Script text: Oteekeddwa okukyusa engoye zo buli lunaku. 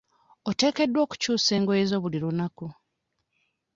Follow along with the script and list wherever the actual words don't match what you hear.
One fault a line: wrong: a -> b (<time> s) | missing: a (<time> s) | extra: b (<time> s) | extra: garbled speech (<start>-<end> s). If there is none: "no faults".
no faults